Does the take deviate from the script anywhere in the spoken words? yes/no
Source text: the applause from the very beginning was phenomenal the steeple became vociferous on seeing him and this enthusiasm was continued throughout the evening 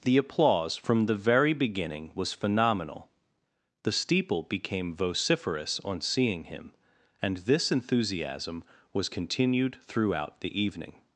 no